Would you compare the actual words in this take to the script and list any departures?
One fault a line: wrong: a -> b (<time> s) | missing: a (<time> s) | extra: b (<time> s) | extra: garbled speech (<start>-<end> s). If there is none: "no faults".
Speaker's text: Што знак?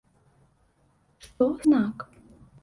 no faults